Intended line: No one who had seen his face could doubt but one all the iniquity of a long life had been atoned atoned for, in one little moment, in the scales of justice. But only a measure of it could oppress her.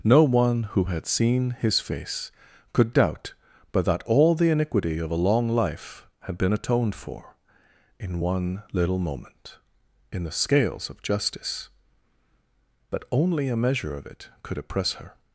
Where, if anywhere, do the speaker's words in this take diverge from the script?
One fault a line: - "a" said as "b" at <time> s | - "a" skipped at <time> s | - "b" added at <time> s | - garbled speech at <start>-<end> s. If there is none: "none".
- "one" said as "that" at 3.8 s
- "atoned" skipped at 6.9 s